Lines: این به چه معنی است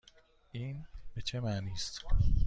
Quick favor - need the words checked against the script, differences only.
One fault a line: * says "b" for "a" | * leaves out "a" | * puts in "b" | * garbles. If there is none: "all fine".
all fine